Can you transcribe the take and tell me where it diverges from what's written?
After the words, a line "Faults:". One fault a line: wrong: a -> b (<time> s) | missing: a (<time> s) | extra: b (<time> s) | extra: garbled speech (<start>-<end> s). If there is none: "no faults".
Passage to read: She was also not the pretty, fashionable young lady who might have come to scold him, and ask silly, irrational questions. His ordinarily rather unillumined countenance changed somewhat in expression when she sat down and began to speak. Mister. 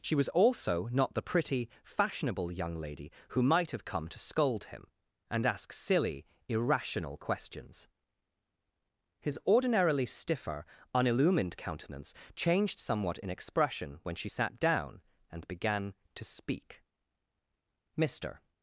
She was also not the pretty, fashionable young lady who might have come to scold him, and ask silly, irrational questions. His ordinarily stiffer unillumined countenance changed somewhat in expression when she sat down and began to speak. Mister.
Faults:
wrong: rather -> stiffer (10.1 s)